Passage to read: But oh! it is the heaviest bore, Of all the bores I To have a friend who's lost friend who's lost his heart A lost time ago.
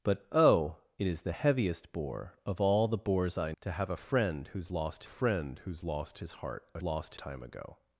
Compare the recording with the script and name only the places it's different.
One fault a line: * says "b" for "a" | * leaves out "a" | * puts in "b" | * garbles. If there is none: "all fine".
all fine